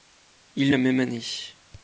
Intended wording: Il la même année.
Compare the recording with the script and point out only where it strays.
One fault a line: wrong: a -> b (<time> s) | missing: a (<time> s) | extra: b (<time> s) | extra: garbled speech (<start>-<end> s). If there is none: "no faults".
no faults